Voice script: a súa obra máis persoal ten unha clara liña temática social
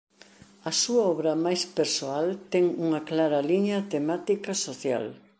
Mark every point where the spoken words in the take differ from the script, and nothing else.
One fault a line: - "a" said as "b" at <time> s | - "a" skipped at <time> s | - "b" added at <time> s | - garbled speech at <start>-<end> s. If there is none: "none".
none